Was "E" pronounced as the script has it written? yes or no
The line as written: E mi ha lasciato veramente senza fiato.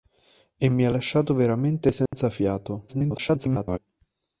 yes